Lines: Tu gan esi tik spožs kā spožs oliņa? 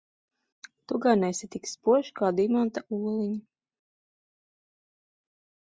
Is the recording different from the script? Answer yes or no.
yes